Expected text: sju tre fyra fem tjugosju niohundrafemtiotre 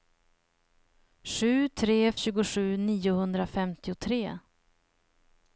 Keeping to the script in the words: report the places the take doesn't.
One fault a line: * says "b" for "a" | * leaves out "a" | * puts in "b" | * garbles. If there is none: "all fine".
* leaves out "fyra fem"